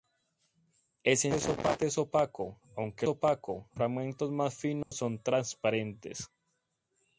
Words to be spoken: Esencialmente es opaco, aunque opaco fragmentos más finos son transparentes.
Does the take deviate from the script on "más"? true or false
false